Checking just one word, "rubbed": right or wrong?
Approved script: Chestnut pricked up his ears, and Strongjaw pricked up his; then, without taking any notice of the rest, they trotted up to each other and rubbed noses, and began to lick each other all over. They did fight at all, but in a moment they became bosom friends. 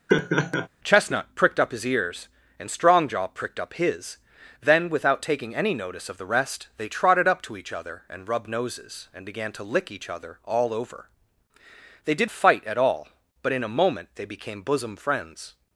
right